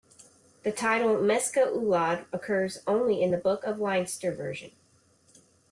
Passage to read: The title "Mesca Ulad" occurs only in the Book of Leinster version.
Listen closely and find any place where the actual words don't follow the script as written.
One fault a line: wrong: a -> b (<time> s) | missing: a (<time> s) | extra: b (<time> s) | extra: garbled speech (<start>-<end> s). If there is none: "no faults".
no faults